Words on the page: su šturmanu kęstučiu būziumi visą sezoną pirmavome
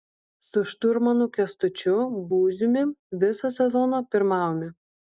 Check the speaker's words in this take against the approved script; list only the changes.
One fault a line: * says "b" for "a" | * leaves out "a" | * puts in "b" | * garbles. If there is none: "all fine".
all fine